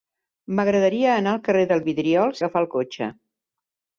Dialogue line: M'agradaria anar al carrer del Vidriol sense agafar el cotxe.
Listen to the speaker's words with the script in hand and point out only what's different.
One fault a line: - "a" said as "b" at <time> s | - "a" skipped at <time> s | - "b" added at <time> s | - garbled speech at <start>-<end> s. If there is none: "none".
- "sense" skipped at 2.4 s